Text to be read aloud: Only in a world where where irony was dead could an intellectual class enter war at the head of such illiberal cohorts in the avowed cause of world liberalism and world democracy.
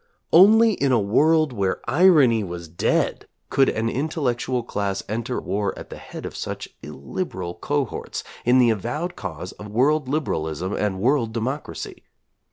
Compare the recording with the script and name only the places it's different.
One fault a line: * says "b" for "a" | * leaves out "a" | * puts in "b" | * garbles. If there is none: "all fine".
* leaves out "where"